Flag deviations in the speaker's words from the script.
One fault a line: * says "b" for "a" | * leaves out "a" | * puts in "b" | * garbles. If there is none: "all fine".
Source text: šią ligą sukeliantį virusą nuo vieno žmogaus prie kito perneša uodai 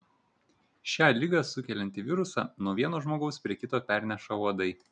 all fine